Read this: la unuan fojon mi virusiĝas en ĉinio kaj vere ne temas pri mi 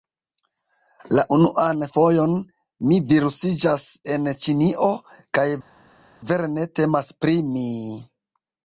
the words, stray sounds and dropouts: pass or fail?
pass